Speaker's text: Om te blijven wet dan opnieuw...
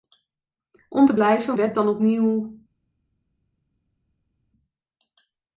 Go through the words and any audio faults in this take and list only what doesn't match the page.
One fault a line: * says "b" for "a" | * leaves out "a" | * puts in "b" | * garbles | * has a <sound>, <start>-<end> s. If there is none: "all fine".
all fine